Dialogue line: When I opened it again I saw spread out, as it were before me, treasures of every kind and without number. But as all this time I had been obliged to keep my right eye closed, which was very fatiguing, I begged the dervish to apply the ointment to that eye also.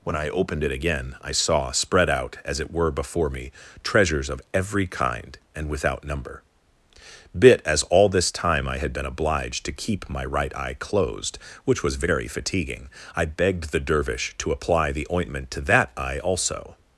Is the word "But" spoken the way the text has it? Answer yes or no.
no